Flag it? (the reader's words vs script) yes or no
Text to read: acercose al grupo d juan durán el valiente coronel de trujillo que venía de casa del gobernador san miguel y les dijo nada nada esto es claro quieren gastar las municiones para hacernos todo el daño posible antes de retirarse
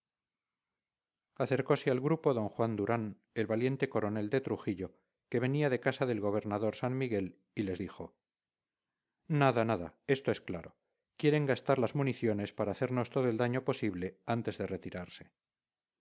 no